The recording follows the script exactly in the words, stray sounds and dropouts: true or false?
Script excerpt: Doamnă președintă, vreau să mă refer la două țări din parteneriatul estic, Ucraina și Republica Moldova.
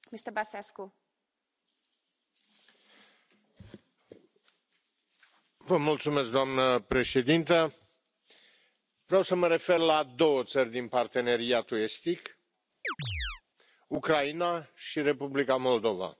false